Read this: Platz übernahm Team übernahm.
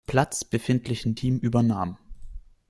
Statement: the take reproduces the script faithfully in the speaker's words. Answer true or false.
false